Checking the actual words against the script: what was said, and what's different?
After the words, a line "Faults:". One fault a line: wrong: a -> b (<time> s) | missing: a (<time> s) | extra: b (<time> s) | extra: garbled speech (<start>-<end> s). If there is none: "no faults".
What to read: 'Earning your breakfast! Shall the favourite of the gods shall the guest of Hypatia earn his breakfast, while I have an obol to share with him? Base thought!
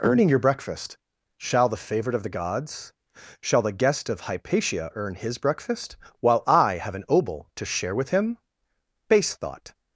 'Earning your breakfast! Shall the favourite of the gods shall the guest of Hypatia earn his breakfast, while I have an obol to share with him? Base thought!
Faults:
no faults